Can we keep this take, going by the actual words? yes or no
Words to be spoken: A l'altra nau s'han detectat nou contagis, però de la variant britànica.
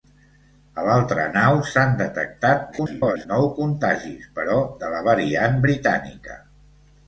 no